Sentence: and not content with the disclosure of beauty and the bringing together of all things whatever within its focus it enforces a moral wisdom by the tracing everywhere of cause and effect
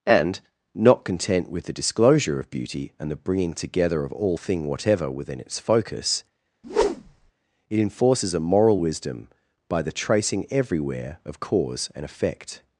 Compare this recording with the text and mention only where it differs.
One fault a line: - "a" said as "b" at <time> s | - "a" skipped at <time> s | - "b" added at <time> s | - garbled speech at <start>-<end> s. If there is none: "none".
- "things" said as "thing" at 4.3 s